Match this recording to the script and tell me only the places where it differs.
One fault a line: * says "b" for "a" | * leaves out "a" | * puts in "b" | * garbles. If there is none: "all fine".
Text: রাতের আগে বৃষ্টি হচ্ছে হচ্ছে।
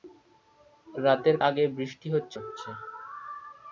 all fine